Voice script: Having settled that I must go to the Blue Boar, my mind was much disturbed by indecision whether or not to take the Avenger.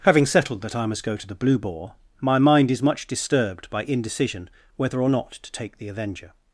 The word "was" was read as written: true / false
false